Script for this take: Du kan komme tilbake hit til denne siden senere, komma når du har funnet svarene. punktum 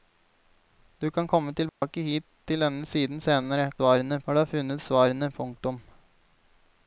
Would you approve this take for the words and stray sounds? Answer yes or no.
no